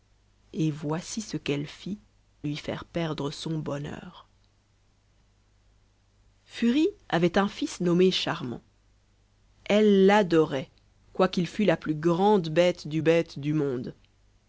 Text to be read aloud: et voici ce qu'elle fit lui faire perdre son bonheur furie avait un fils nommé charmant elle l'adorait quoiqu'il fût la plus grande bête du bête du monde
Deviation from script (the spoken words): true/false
false